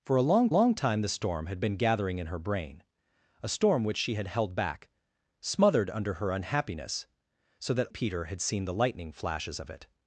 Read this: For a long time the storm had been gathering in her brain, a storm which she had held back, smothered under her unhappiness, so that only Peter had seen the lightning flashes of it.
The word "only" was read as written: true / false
false